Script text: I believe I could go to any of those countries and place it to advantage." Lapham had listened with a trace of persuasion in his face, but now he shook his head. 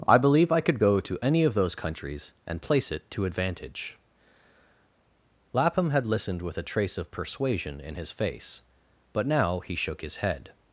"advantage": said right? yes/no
yes